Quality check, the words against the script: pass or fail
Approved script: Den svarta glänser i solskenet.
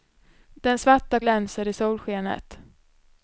pass